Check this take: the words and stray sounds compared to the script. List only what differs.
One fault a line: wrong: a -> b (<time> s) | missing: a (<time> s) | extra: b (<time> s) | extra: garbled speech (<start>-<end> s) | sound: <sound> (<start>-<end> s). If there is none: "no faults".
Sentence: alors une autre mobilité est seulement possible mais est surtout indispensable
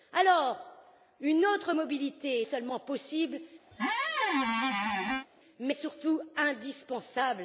sound: squeak (3.7-5.3 s)